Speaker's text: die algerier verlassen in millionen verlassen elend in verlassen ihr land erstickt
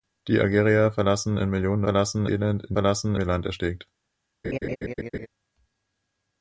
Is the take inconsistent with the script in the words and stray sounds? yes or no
yes